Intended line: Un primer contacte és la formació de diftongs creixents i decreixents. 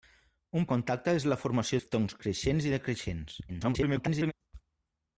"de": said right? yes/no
no